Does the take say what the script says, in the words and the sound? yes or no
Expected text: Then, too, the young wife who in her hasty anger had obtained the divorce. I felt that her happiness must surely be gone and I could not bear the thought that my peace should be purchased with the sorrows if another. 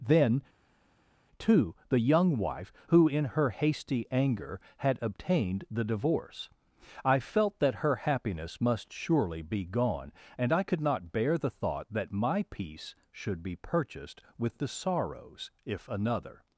yes